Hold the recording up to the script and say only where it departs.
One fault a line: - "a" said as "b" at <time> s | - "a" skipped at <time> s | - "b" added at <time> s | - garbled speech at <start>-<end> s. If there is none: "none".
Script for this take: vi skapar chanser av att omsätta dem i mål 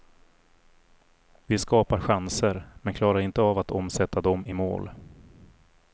- "men klarar inte" added at 2.8 s